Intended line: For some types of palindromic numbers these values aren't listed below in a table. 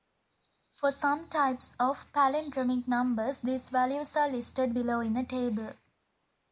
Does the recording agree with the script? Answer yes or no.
no